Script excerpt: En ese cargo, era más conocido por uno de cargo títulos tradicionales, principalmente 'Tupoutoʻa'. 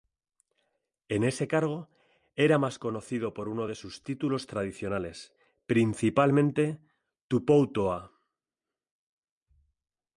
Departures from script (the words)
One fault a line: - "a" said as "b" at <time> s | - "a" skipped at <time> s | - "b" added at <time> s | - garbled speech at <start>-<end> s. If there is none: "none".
- "cargo" said as "sus" at 3.8 s